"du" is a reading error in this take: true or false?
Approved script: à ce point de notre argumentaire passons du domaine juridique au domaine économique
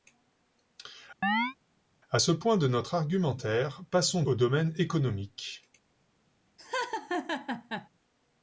true